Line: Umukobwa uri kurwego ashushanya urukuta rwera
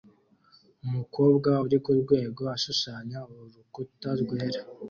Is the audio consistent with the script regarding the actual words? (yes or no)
yes